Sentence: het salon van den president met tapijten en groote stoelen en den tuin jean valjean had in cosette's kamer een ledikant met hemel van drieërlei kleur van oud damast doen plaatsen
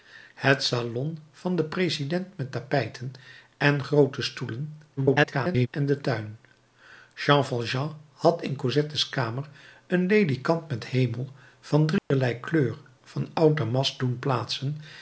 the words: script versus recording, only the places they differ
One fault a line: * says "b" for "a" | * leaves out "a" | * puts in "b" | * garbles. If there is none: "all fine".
* garbles